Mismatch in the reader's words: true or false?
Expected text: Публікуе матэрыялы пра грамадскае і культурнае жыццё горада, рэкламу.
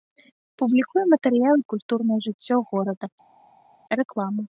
true